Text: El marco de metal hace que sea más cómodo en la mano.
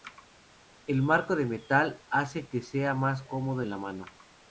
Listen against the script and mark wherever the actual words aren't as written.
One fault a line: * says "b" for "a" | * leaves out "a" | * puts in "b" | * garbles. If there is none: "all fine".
all fine